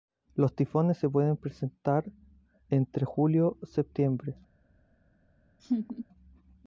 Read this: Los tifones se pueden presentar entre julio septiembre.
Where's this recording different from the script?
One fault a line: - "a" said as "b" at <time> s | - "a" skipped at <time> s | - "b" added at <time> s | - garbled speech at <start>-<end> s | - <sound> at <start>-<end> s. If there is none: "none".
- laugh at 5.6-6.1 s